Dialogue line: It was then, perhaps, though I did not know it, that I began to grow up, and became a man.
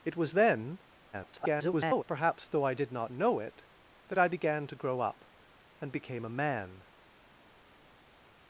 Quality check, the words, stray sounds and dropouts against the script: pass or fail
fail